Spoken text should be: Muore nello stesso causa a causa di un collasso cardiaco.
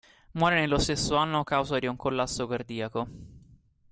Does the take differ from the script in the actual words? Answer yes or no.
yes